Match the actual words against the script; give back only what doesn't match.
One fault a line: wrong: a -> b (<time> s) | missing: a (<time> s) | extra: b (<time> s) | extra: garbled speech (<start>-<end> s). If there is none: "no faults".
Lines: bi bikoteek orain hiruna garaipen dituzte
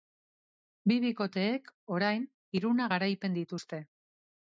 no faults